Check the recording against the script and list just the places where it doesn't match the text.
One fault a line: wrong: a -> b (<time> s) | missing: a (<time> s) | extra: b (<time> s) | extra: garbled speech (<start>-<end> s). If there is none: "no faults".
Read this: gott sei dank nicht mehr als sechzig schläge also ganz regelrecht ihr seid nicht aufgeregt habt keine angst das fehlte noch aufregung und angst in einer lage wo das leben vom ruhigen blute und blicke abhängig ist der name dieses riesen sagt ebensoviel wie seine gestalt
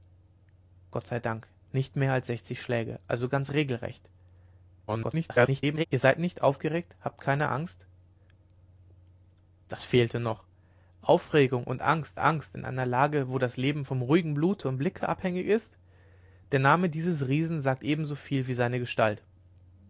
extra: garbled speech (4.9-5.9 s)
extra: angst (12.2 s)